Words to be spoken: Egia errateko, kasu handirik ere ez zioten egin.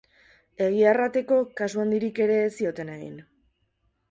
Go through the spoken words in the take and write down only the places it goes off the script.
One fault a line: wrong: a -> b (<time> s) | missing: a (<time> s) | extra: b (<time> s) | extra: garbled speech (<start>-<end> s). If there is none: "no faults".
no faults